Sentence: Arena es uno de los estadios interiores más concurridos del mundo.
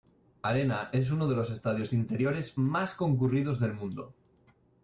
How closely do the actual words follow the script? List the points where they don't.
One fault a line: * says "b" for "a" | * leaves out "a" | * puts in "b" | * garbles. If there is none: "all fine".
all fine